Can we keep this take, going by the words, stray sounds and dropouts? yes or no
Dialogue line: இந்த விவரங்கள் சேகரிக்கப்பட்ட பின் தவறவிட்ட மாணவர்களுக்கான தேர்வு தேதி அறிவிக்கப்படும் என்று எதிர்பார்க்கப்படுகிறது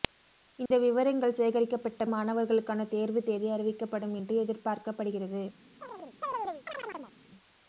no